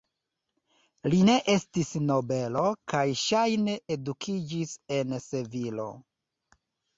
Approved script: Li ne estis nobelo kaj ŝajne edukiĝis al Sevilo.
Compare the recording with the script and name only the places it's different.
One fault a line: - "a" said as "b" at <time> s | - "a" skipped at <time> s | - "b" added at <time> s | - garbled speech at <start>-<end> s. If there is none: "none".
- "al" said as "en" at 5.0 s